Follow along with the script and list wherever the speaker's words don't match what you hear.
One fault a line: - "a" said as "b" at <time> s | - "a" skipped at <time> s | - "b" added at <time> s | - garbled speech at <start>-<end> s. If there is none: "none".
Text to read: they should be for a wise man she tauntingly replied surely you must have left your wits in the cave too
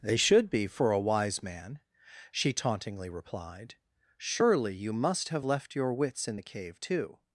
none